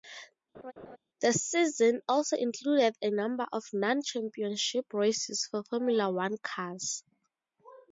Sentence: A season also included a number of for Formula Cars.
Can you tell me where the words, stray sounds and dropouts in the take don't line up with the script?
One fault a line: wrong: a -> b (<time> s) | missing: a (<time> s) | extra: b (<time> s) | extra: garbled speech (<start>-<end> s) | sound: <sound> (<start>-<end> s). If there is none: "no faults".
sound: laugh (0.5-1.0 s)
wrong: A -> The (1.2 s)
extra: non championship races (3.7 s)
extra: One (6.1 s)